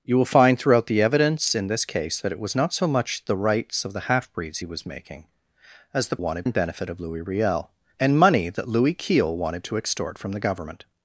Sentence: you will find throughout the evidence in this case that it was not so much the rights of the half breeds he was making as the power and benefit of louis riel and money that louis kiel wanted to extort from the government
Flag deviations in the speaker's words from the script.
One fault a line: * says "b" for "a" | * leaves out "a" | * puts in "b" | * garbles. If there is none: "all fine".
* says "wanted" for "power"